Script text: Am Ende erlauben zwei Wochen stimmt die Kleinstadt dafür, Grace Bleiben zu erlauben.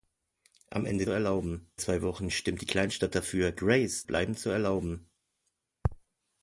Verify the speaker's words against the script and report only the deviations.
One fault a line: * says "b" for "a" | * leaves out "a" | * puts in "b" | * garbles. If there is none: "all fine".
all fine